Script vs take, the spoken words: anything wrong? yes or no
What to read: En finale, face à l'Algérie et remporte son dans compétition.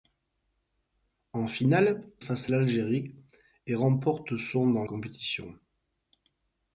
no